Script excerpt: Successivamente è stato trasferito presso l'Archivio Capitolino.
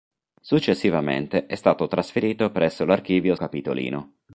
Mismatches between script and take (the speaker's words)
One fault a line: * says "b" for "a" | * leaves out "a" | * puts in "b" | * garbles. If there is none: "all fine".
all fine